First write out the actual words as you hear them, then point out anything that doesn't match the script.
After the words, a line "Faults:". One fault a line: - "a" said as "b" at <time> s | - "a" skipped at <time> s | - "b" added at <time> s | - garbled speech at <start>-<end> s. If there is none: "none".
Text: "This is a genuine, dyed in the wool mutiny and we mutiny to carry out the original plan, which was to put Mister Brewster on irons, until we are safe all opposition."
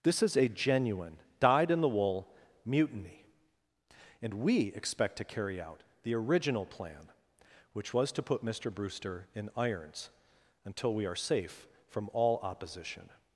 "This is a genuine, dyed in the wool mutiny and we expect to carry out the original plan, which was to put Mister Brewster in irons, until we are safe from all opposition."
Faults:
- "mutiny" said as "expect" at 4.7 s
- "on" said as "in" at 9.3 s
- "from" added at 11.9 s